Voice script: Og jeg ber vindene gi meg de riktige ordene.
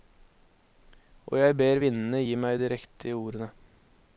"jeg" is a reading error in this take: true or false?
false